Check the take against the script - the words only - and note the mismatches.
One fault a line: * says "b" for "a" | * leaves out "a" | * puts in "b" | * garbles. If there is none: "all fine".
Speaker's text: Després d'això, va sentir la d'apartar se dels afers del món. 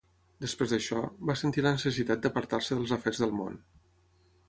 * puts in "necessitat"